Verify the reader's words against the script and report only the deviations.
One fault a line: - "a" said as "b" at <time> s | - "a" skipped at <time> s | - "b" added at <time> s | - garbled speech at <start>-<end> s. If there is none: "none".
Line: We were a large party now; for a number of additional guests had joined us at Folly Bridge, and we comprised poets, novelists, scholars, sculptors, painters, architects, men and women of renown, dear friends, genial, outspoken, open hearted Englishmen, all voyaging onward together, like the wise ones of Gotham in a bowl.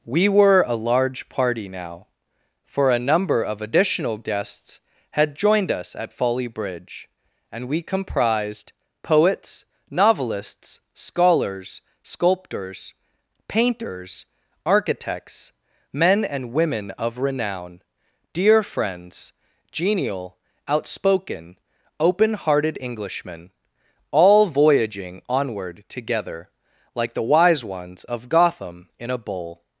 none